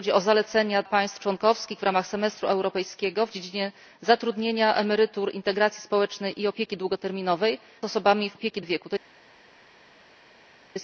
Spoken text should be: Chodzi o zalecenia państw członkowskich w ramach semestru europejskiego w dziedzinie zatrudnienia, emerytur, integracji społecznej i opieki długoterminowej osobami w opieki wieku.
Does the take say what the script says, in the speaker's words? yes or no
yes